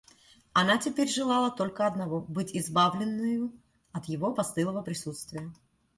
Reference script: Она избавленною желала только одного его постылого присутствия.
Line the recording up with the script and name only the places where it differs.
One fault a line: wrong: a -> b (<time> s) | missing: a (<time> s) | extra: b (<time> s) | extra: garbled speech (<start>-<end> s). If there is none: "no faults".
wrong: избавленною -> теперь (0.8 s)
extra: быть избавленною от (2.2 s)